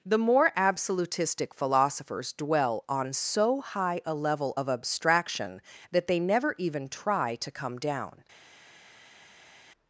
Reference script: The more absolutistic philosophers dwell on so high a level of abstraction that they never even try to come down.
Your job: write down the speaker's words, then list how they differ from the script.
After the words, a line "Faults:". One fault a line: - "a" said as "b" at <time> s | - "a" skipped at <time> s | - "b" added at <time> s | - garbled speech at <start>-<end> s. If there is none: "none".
The more absolutistic philosophers dwell on so high a level of abstraction that they never even try to come down.
Faults:
none